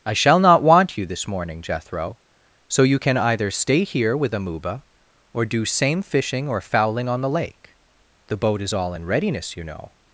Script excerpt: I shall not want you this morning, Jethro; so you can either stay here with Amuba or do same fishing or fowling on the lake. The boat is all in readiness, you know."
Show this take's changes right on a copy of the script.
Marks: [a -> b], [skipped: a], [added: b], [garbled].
I shall not want you this morning, Jethro; so you can either stay here with Amuba or do same fishing or fowling on the lake. The boat is all in readiness, you know."